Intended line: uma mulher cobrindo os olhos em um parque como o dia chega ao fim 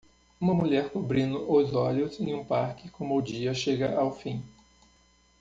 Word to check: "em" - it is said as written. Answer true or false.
true